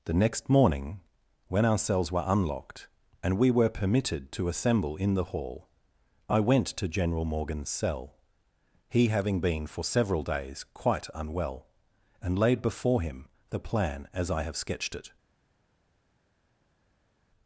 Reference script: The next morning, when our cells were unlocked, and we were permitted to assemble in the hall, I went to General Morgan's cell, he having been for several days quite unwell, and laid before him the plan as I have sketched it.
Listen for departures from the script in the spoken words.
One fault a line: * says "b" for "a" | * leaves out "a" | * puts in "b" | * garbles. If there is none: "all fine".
all fine